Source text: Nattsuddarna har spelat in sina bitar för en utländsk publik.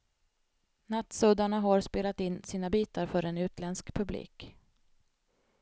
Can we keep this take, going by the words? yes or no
yes